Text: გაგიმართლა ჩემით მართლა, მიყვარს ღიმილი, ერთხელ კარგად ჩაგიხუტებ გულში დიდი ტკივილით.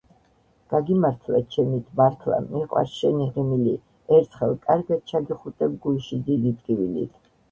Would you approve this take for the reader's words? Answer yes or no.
no